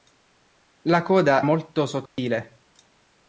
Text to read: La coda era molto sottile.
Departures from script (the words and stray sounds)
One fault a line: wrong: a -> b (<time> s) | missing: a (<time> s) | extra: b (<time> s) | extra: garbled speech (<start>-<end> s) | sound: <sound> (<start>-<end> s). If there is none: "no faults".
missing: era (1.4 s)
sound: dropout (2.1-2.2 s)